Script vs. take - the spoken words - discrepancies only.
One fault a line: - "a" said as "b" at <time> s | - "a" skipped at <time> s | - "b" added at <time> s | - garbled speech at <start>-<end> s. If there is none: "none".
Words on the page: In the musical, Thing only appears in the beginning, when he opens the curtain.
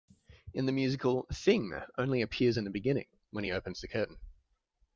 none